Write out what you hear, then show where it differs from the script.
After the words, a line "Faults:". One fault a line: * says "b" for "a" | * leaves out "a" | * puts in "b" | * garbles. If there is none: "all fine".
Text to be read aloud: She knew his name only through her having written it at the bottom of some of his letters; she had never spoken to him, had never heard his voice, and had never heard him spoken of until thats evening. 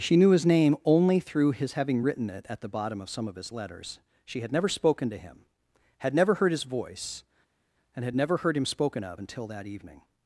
She knew his name only through his having written it at the bottom of some of his letters; she had never spoken to him, had never heard his voice, and had never heard him spoken of until that evening.
Faults:
* says "his" for "her"
* says "that" for "thats"